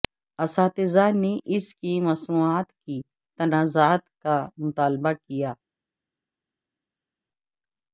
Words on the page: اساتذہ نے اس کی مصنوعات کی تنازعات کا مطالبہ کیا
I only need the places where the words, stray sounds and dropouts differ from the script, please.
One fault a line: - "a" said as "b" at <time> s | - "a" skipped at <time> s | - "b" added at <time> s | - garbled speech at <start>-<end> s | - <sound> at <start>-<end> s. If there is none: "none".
none